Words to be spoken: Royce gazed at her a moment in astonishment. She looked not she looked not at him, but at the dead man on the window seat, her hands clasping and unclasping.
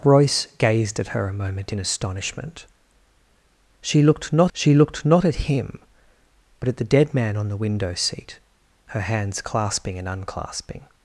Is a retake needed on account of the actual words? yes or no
no